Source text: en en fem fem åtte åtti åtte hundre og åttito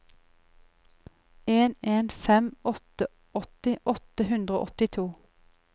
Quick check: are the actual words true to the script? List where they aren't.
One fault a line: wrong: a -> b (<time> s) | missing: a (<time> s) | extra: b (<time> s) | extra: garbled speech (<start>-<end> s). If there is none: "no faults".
missing: fem (2.5 s)